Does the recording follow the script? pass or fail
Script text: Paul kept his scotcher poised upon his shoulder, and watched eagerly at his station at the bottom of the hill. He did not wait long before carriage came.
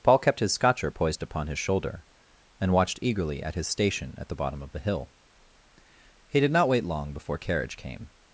pass